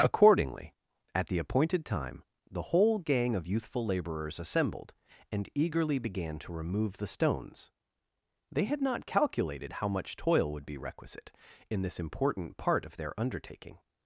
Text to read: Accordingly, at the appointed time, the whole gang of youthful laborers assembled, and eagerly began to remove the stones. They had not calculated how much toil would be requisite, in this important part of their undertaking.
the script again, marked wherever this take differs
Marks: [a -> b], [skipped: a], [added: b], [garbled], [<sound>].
Accordingly, at the appointed time, the whole gang of youthful laborers assembled, and eagerly began to remove the stones. They had not calculated how much toil would be requisite, in this important part of their undertaking.